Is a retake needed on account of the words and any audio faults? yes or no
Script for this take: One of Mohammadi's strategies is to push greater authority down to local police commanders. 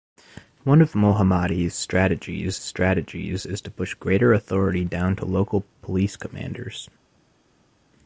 yes